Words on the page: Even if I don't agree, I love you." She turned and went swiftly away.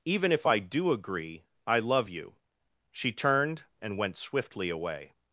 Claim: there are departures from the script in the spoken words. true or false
true